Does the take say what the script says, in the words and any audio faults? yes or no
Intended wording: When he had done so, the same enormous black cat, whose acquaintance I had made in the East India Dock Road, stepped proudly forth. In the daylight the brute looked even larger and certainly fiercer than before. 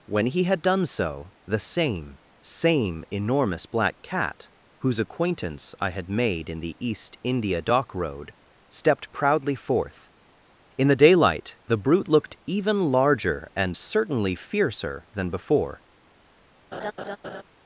no